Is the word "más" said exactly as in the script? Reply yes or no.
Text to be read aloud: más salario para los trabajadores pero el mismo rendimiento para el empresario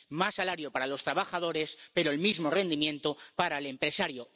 yes